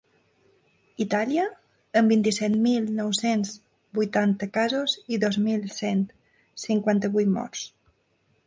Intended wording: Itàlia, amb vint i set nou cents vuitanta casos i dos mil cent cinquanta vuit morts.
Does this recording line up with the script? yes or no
no